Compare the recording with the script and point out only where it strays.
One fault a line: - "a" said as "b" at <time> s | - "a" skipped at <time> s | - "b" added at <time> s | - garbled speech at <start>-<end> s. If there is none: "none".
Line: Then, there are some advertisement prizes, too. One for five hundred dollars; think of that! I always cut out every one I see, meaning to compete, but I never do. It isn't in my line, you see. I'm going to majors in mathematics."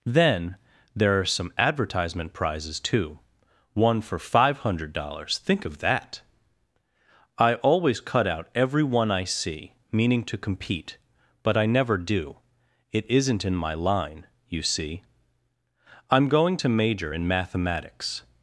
- "majors" said as "major" at 16.7 s